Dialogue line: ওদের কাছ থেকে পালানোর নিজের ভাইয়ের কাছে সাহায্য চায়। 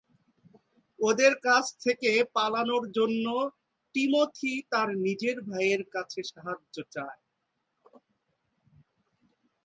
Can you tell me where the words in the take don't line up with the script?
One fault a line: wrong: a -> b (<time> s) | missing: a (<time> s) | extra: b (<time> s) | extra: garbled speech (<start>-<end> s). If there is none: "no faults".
extra: জন্য টিমোথি তার (2.9 s)